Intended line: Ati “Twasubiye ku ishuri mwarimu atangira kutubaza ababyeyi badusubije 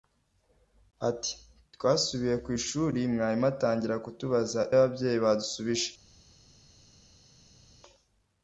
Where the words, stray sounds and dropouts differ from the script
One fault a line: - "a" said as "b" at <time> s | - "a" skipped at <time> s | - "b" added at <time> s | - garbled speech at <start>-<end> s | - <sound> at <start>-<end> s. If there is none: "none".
none